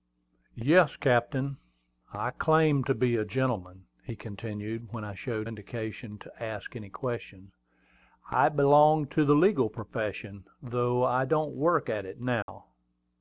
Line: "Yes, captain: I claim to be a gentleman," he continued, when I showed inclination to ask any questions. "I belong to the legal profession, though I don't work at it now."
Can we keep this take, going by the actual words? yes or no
yes